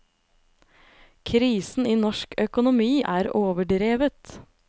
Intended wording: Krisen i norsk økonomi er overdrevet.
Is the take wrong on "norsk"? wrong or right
right